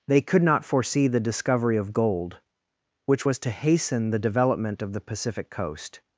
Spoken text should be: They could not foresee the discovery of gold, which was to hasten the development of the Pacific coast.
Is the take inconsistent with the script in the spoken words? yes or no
no